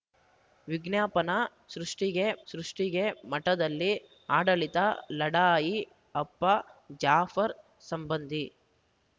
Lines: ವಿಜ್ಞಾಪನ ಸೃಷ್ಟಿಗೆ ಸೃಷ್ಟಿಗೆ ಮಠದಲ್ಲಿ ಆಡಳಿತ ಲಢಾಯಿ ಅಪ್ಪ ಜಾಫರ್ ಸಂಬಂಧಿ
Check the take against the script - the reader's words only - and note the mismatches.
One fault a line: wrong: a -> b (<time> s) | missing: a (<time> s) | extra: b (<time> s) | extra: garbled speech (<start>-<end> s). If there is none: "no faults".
no faults